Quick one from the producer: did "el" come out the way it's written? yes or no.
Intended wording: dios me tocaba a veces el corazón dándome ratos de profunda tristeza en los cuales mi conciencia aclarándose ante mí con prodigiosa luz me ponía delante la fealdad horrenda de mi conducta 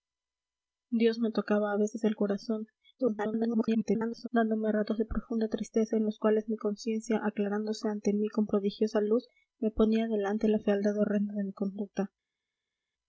yes